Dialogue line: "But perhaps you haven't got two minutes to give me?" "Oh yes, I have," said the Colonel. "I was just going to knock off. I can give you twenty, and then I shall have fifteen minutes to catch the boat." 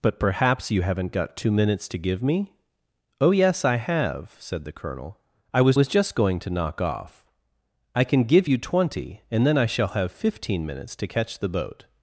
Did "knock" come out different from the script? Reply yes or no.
no